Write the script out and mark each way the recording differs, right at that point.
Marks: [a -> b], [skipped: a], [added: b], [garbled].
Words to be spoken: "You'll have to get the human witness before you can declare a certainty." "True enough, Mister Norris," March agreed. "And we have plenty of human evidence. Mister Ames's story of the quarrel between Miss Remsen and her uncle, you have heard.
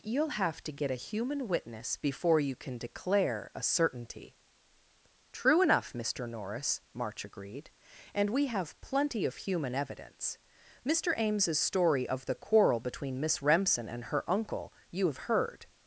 "You'll have to get [the -> a] human witness before you can declare a certainty." "True enough, Mister Norris," March agreed. "And we have plenty of human evidence. Mister Ames's story of the quarrel between Miss Remsen and her uncle, you have heard.